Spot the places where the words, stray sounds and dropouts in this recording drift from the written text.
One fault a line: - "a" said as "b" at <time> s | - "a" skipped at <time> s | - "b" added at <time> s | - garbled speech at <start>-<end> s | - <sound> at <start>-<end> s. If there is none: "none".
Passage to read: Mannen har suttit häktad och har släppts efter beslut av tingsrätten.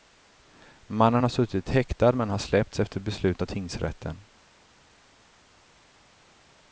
- "och" said as "men" at 2.1 s